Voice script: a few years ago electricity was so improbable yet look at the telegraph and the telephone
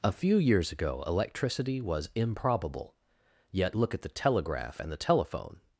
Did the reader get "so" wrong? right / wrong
wrong